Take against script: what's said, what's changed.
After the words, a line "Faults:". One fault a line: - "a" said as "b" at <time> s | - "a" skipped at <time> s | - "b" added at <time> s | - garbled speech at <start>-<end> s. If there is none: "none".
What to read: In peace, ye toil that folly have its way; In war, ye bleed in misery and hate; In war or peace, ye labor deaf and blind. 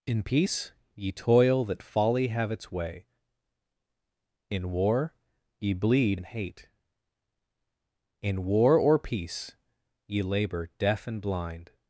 In peace, ye toil that folly have its way; In war, ye bleed and hate; In war or peace, ye labor deaf and blind.
Faults:
- "in misery" skipped at 6.2 s